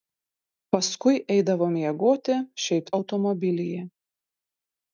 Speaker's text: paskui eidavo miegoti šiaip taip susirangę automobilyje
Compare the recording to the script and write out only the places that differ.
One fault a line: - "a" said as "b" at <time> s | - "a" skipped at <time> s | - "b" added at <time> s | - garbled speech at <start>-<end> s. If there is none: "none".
- "taip susirangę" skipped at 2.9 s